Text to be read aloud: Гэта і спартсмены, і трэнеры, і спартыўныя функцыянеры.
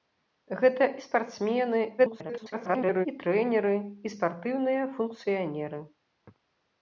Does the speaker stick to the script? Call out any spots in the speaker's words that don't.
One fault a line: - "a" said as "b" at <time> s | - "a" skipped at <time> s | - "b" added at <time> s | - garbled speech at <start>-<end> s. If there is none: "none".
- garbled speech at 2.0-3.1 s